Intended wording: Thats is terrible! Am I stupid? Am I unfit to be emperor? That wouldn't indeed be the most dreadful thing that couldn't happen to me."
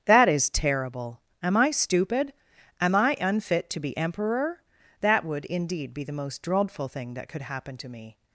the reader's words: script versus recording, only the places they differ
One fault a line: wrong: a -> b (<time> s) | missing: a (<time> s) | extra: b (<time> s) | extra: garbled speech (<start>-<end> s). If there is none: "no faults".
wrong: Thats -> That (0.1 s)
wrong: wouldn't -> would (5.2 s)
wrong: couldn't -> could (7.3 s)